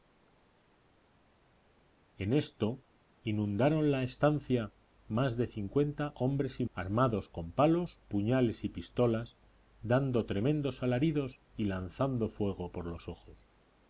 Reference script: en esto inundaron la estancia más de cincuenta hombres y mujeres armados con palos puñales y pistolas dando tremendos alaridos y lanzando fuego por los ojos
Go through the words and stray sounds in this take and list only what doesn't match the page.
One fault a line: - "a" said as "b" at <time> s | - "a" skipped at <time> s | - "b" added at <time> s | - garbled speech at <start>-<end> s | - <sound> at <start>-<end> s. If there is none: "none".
- "mujeres" skipped at 6.6 s